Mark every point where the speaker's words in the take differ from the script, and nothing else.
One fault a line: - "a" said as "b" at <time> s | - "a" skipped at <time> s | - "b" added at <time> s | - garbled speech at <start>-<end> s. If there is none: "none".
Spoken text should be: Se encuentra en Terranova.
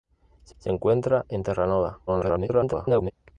- "se" added at 0.6 s
- garbled speech at 2.1-3.1 s